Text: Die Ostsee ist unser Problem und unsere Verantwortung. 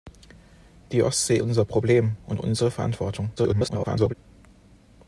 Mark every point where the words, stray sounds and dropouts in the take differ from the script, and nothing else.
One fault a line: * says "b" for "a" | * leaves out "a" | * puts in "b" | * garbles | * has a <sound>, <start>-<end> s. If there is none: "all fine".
* leaves out "ist"
* garbles